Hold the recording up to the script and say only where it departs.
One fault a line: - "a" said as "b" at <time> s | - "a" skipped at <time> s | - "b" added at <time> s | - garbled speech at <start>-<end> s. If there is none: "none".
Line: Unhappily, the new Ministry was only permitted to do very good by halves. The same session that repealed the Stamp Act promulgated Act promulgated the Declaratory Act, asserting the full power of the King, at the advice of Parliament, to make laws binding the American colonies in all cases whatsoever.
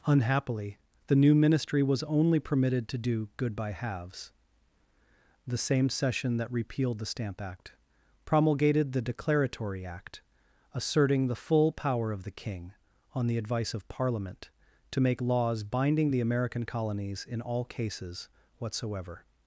- "very" skipped at 3.3 s
- "Act promulgated" skipped at 8.9 s
- "at" said as "on" at 13.1 s